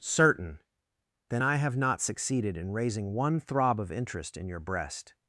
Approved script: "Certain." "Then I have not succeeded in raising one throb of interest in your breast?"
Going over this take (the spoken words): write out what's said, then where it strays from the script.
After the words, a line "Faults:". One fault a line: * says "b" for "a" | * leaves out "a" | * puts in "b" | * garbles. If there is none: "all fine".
"Certain." "Then I have not succeeded in raising one throb of interest in your breast?"
Faults:
all fine